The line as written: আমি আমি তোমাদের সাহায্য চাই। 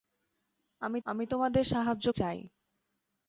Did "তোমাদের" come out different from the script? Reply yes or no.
no